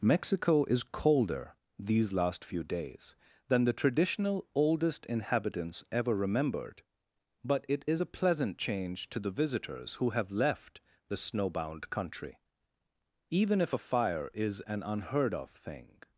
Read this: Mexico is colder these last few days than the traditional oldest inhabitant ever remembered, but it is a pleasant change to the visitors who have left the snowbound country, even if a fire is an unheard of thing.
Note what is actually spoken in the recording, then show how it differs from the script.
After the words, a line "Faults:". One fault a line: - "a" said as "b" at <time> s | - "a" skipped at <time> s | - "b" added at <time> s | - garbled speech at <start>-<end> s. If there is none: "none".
Mexico is colder these last few days than the traditional oldest inhabitants ever remembered, but it is a pleasant change to the visitors who have left the snowbound country, even if a fire is an unheard of thing.
Faults:
- "inhabitant" said as "inhabitants" at 5.0 s